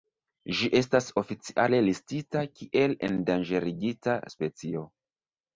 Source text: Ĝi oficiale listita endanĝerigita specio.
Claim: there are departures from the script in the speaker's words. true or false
true